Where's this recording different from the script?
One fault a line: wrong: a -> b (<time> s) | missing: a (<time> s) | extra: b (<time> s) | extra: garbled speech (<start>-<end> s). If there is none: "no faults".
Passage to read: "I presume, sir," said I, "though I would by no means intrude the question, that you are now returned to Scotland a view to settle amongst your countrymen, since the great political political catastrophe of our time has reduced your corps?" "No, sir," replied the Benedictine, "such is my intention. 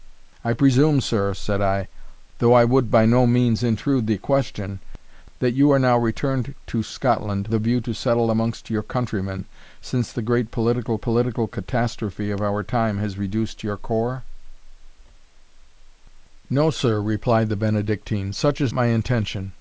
no faults